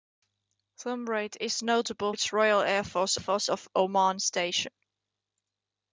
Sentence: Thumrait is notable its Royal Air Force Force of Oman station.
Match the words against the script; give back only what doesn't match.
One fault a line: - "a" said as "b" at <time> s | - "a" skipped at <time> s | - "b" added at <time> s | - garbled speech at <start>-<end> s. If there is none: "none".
none